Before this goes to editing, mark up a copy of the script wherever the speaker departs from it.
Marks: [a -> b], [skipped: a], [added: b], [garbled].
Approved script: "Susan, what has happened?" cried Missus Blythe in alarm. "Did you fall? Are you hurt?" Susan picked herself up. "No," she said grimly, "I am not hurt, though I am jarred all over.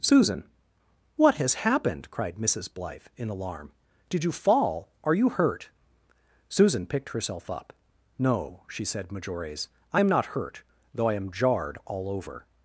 "Susan, what has happened?" cried Missus Blythe in alarm. "Did you fall? Are you hurt?" Susan picked herself up. "No," she said [grimly, -> majores] "I am not hurt, though I am jarred all over.